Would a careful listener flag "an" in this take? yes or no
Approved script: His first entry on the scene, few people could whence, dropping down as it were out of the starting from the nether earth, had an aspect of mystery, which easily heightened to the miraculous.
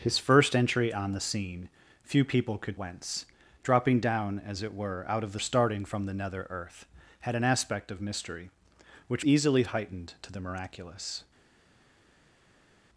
no